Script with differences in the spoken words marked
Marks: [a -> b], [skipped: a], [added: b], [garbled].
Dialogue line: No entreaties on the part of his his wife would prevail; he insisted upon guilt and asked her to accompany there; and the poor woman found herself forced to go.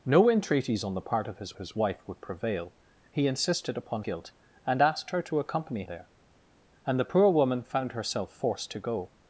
No entreaties on the part of his his wife would prevail; he insisted upon guilt and asked her to accompany there; and the poor woman found herself forced to go.